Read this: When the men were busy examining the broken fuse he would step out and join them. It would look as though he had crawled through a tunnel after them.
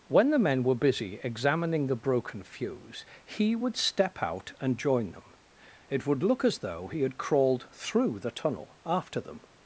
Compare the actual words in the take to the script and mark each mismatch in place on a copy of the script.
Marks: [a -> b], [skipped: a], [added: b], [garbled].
When the men were busy examining the broken fuse he would step out and join them. It would look as though he had crawled through [a -> the] tunnel after them.